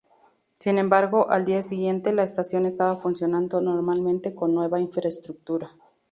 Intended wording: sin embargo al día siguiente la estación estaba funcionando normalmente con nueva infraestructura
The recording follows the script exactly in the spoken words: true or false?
true